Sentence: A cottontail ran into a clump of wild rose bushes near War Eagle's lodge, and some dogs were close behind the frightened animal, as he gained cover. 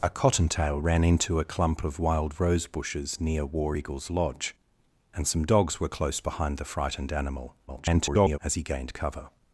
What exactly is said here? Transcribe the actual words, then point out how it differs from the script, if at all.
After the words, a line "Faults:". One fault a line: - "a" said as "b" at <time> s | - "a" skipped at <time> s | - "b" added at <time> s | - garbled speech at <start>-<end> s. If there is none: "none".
A cottontail ran into a clump of wild rose bushes near War Eagle's lodge, and some dogs were close behind the frightened animal, [garbled] as he gained cover.
Faults:
- garbled speech at 7.7-8.4 s